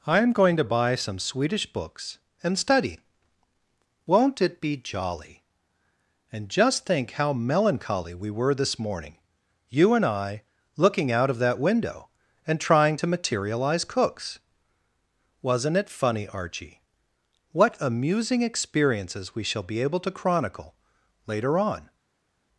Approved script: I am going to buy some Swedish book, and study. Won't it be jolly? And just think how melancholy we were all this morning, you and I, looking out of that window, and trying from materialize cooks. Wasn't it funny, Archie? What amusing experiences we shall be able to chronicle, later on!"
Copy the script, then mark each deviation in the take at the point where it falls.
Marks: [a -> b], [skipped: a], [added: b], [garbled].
I am going to buy some Swedish [book, -> books] and study. Won't it be jolly? And just think how melancholy we were [skipped: all] this morning, you and I, looking out of that window, and trying [from -> to] materialize cooks. Wasn't it funny, Archie? What amusing experiences we shall be able to chronicle, later on!"